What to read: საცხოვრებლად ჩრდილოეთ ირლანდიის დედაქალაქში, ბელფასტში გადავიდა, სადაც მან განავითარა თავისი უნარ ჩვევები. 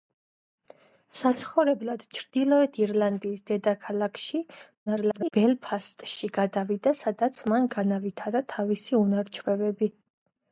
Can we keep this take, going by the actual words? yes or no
no